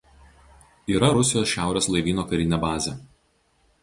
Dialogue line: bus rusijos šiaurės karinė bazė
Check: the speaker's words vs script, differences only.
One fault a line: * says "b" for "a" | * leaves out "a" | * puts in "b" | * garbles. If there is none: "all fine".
* says "yra" for "bus"
* puts in "laivyno"